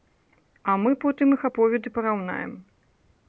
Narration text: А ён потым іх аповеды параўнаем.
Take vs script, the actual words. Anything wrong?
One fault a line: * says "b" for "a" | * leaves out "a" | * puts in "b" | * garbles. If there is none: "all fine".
* says "мы" for "ён"